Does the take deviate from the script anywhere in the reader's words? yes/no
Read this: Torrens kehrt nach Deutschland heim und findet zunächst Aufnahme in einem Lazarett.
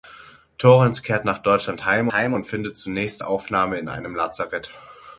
yes